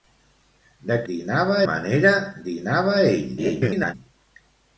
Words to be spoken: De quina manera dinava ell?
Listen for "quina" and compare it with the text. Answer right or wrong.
wrong